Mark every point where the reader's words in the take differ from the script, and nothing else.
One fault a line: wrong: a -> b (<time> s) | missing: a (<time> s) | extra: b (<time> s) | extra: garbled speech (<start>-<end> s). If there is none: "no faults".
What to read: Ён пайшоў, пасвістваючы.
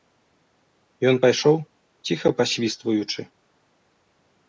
extra: ціха (2.1 s)